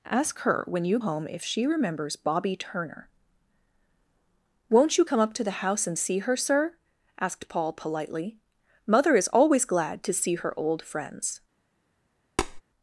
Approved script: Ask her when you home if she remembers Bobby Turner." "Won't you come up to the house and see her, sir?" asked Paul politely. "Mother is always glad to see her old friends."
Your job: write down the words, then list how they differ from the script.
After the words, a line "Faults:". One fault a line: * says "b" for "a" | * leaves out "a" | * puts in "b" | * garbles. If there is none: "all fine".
Ask her when you home if she remembers Bobby Turner." "Won't you come up to the house and see her, sir?" asked Paul politely. "Mother is always glad to see her old friends."
Faults:
all fine